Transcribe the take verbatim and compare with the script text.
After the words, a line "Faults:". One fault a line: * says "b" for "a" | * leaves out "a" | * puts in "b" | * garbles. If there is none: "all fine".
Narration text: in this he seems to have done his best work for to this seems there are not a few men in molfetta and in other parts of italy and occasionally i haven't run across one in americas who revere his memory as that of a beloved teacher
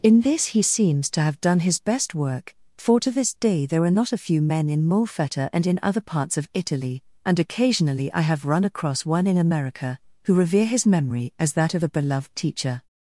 in this he seems to have done his best work for to this day there are not a few men in molfetta and in other parts of italy and occasionally i have run across one in america who revere his memory as that of a beloved teacher
Faults:
* says "day" for "seems"
* says "have" for "haven't"
* says "america" for "americas"